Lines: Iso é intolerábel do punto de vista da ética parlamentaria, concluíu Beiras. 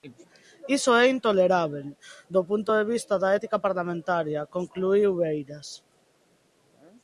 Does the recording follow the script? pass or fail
pass